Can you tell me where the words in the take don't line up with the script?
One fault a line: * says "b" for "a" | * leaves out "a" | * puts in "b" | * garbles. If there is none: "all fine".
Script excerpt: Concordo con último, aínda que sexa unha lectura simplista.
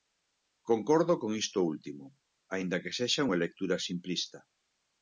* puts in "isto"